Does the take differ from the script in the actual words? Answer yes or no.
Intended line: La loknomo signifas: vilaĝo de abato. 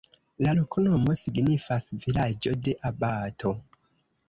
no